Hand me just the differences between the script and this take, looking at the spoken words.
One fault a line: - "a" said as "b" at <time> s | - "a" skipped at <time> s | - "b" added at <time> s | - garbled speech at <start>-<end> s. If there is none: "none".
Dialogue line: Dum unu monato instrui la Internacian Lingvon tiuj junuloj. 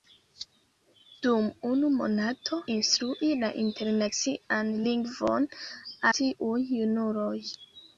none